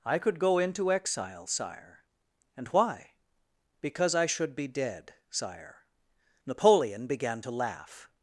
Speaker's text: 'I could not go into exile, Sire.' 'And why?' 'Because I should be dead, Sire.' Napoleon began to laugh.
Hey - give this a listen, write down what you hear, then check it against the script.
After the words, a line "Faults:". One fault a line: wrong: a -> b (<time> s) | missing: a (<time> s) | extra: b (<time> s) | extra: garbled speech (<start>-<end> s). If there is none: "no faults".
'I could go into exile, Sire.' 'And why?' 'Because I should be dead, Sire.' Napoleon began to laugh.
Faults:
missing: not (0.4 s)